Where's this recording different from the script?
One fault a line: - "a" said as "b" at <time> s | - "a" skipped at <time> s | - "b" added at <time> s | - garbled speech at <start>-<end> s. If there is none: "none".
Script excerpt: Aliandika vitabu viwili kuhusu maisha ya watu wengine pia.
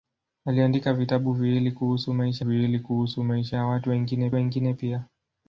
- "viwili kuhusu maisha" added at 2.4 s
- "wengine" added at 4.3 s